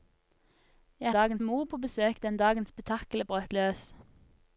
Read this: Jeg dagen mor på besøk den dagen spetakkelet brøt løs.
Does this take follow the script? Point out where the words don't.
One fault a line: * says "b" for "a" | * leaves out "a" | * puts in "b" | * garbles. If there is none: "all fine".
all fine